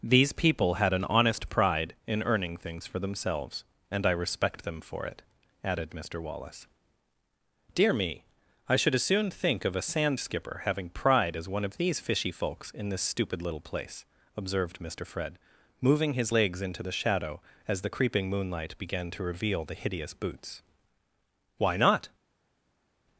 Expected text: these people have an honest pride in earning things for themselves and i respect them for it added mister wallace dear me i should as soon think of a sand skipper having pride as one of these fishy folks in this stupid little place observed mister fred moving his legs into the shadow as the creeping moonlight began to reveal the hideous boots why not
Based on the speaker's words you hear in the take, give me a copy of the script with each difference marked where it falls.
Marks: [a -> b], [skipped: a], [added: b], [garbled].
these people [have -> had] an honest pride in earning things for themselves and i respect them for it added mister wallace dear me i should as soon think of a sand skipper having pride as one of these fishy folks in this stupid little place observed mister fred moving his legs into the shadow as the creeping moonlight began to reveal the hideous boots why not